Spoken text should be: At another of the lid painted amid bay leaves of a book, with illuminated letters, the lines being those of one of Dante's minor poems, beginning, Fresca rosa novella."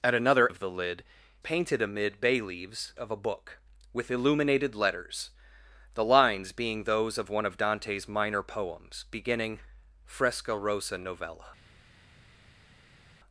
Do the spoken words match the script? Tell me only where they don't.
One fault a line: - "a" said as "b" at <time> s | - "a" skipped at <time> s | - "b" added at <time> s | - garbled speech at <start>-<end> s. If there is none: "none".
none